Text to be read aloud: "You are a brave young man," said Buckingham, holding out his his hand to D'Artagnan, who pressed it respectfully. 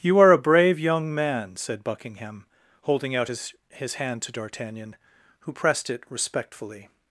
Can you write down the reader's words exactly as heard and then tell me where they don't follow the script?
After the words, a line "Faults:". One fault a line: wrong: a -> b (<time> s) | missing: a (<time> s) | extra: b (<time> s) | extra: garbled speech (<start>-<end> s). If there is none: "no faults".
"You are a brave young man," said Buckingham, holding out his his hand to D'Artagnan, who pressed it respectfully.
Faults:
no faults